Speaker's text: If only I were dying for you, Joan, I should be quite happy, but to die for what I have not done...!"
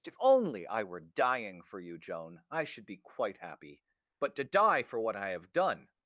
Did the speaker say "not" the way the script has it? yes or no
no